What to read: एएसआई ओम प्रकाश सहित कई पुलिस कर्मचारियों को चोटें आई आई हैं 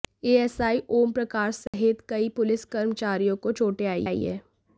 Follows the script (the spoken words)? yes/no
yes